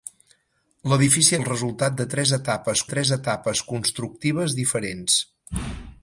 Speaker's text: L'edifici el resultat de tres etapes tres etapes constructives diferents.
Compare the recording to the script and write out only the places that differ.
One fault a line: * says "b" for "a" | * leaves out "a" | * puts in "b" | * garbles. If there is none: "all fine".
all fine